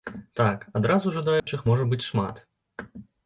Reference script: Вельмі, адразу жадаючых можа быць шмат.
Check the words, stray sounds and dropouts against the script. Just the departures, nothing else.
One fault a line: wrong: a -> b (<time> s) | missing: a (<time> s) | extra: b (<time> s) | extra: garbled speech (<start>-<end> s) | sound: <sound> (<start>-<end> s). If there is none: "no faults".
wrong: Вельмі -> Так (0.4 s)
sound: dropout (1.4-1.5 s)